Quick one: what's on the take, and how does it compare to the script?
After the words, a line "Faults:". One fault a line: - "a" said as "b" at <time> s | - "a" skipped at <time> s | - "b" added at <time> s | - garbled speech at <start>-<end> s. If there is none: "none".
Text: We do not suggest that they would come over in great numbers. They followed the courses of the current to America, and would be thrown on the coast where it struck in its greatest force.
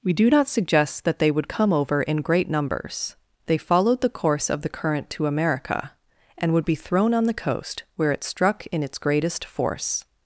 We do not suggest that they would come over in great numbers. They followed the course of the current to America, and would be thrown on the coast where it struck in its greatest force.
Faults:
- "courses" said as "course" at 4.1 s